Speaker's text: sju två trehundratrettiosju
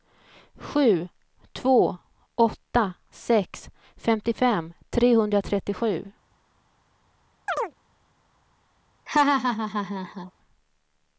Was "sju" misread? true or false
false